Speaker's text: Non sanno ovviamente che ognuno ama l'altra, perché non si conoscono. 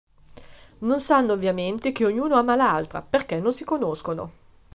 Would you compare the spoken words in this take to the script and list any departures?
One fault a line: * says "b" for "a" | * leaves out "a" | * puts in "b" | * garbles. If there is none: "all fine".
all fine